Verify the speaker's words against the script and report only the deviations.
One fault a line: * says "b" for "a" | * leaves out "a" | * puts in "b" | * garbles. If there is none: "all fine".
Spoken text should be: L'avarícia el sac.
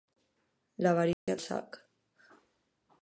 all fine